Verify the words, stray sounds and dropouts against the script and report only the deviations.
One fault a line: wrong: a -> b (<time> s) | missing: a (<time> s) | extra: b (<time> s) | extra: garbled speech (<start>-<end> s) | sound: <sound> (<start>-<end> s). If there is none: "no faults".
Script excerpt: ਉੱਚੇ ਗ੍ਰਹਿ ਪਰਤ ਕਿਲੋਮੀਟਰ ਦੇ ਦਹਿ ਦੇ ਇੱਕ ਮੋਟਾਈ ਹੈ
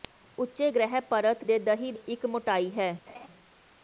missing: ਕਿਲੋਮੀਟਰ (1.4 s)
missing: ਦੇ (1.9 s)
sound: laugh (3.1-3.3 s)